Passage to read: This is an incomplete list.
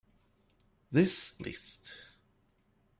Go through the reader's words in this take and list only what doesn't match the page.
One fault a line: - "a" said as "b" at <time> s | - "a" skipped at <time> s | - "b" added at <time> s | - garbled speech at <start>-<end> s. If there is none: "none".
- "is an incomplete" skipped at 1.4 s